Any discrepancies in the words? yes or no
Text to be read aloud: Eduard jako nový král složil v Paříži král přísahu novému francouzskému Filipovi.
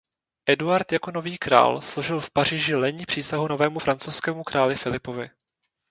yes